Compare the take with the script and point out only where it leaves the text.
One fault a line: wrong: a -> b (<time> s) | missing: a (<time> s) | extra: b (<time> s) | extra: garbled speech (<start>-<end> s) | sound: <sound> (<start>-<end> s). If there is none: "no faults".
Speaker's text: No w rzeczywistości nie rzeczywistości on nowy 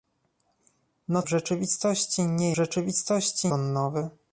no faults